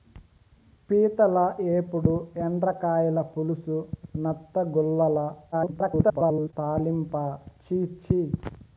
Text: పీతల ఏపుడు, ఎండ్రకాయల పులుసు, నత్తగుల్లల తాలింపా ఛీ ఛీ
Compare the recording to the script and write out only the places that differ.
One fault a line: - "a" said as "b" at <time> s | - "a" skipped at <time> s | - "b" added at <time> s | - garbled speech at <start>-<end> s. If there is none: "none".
- garbled speech at 5.5-6.5 s